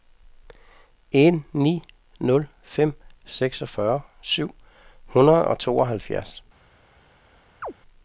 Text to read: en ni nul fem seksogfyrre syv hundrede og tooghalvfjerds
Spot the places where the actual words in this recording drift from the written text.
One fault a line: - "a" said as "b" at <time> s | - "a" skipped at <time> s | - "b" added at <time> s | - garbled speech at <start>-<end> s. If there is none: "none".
none